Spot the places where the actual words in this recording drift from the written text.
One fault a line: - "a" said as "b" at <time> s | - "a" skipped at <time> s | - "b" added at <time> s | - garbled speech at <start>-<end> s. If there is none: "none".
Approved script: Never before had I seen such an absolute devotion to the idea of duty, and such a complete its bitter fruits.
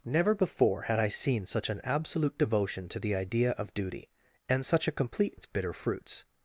none